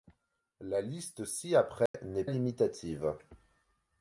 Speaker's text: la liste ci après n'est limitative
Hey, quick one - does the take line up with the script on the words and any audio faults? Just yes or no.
no